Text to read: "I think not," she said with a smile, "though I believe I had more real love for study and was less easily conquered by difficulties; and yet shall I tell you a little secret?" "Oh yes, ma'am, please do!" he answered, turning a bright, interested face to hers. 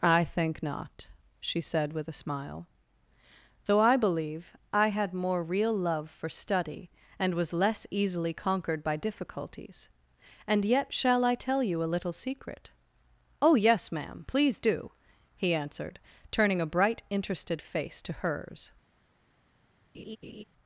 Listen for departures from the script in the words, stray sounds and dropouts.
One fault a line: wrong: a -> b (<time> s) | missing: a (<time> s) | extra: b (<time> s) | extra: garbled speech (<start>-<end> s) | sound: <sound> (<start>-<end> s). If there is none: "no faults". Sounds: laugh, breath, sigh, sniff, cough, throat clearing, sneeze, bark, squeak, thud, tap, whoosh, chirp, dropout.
sound: laugh (19.9-20.4 s)